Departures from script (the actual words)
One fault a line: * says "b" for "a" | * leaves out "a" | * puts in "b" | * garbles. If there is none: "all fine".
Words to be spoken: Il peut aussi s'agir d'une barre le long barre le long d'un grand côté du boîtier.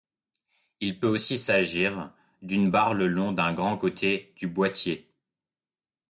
* leaves out "barre le long"